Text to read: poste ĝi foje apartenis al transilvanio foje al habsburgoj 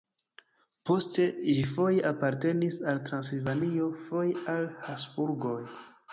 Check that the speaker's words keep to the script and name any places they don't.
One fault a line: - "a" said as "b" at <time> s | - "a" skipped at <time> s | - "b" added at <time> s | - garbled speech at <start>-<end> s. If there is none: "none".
none